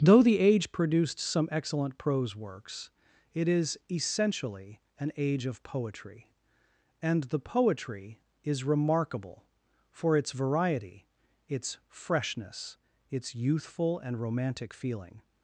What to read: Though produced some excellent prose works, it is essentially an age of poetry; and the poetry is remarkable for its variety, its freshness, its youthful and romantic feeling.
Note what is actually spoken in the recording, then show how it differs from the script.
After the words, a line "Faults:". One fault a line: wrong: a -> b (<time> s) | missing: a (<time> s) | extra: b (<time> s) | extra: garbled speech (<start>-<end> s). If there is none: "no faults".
Though the age produced some excellent prose works, it is essentially an age of poetry; and the poetry is remarkable for its variety, its freshness, its youthful and romantic feeling.
Faults:
extra: the age (0.2 s)